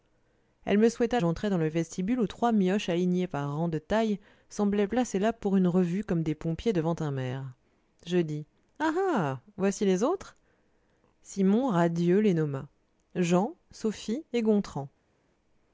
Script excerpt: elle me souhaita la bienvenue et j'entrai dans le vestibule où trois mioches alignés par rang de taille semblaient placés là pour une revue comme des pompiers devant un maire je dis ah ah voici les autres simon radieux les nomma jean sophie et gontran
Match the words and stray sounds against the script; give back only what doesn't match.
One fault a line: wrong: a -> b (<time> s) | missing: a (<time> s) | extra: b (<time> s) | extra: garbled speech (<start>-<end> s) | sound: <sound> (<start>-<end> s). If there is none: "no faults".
missing: la bienvenue et (1.2 s)